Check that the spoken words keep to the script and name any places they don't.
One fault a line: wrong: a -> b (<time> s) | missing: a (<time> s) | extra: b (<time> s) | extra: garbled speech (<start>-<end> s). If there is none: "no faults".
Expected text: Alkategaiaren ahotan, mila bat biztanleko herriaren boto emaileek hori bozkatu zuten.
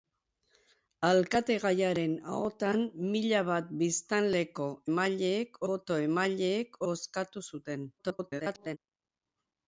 wrong: herriaren -> emaileek (4.9 s)
missing: hori (6.8 s)
extra: garbled speech (8.0-8.8 s)